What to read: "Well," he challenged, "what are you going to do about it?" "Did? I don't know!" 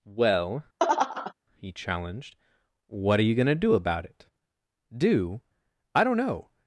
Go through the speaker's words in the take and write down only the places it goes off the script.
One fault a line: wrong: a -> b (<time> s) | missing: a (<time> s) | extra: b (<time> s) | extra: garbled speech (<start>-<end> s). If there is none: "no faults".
wrong: Did -> Do (5.0 s)